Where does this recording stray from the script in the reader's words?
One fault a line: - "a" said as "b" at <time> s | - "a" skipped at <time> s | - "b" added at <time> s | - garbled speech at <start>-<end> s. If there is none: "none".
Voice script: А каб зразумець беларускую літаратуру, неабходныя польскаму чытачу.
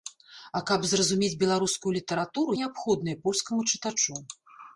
none